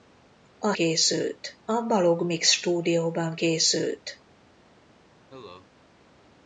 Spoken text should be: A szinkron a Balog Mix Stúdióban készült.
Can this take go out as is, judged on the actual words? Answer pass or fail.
fail